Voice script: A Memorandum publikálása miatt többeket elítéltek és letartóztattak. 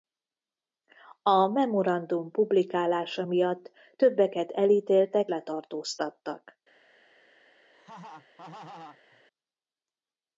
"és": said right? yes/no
no